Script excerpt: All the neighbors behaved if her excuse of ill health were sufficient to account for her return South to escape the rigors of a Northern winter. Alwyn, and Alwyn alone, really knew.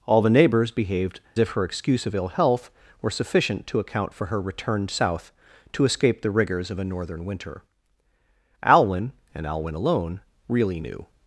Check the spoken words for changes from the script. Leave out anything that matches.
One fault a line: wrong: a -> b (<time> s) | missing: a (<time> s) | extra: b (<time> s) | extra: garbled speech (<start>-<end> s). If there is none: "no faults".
no faults